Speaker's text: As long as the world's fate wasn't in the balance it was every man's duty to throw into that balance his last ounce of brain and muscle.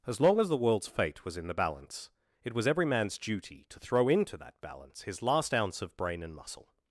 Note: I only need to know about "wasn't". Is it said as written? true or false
false